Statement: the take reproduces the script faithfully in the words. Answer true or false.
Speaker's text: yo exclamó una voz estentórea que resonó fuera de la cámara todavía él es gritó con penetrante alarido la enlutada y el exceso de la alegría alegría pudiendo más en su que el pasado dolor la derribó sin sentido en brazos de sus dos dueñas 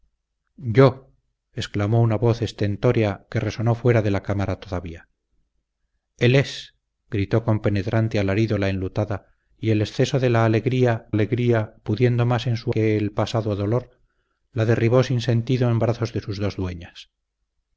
true